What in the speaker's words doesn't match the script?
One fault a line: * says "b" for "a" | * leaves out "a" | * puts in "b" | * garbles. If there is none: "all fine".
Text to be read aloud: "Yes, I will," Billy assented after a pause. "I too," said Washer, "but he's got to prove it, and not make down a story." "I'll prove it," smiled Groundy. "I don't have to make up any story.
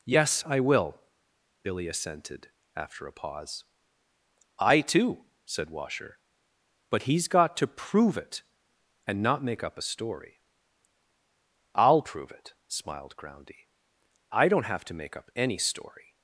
* says "up" for "down"